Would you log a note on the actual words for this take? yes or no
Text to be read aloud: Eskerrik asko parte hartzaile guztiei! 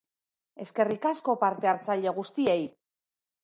no